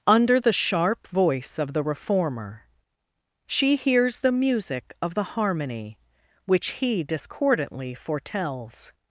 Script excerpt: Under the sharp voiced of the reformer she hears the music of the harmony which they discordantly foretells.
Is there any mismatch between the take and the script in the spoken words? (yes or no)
yes